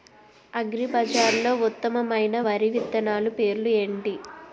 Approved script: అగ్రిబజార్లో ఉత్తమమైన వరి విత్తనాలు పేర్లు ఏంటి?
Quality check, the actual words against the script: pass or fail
pass